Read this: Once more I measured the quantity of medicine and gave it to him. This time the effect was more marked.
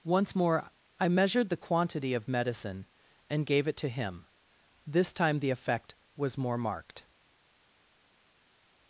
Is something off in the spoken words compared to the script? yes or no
no